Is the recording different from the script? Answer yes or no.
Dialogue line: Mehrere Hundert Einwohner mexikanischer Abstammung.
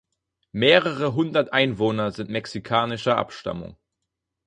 yes